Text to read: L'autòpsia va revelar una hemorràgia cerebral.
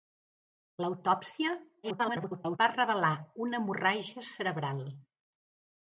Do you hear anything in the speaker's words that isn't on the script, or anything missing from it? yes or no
yes